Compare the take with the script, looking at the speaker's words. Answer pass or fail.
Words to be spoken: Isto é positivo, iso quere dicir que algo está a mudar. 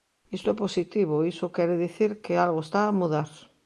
pass